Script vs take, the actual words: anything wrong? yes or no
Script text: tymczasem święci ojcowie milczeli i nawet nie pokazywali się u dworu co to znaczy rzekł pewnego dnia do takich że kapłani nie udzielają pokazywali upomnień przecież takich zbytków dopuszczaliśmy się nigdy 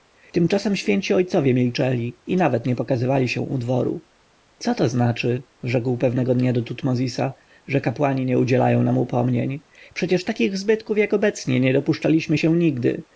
yes